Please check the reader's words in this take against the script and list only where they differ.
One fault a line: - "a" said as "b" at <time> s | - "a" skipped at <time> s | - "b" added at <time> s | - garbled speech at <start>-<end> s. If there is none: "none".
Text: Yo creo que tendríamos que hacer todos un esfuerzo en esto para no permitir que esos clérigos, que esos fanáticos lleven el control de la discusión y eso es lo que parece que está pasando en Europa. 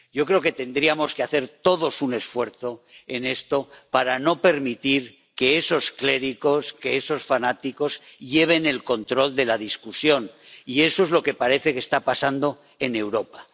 none